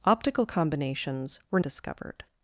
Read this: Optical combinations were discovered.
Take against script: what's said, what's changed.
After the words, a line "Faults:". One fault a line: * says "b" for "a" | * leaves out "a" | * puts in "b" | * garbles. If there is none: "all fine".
Optical combinations were discovered.
Faults:
all fine